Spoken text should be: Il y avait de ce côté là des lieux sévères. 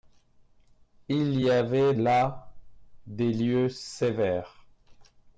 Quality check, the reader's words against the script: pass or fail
fail